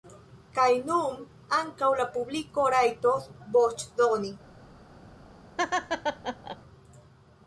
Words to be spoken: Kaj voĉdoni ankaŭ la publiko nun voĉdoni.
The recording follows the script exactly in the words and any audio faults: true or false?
false